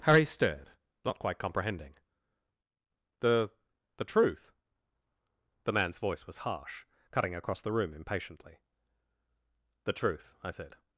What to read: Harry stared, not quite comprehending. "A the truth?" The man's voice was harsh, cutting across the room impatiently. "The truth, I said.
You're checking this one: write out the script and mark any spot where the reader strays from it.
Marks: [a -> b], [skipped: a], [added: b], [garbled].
Harry stared, not quite comprehending. ["A -> The] the truth?" The man's voice was harsh, cutting across the room impatiently. "The truth, I said.